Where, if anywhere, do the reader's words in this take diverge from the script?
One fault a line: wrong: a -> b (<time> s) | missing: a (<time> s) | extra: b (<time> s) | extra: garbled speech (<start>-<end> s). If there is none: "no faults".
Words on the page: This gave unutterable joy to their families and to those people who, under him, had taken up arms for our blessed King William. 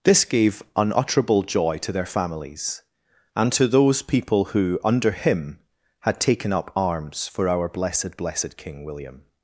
extra: blessed (8.2 s)